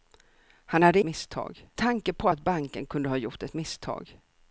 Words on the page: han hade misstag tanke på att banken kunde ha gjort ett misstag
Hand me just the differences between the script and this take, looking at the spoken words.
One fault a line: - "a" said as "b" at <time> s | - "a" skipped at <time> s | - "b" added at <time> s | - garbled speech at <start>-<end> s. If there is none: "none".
none